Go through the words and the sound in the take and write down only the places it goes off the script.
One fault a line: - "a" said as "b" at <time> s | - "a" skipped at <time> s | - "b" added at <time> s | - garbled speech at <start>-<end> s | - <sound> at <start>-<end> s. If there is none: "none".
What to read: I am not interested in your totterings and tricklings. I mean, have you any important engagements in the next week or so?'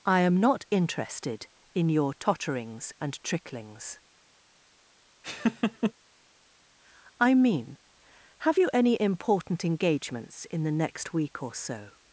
- laugh at 5.2-5.9 s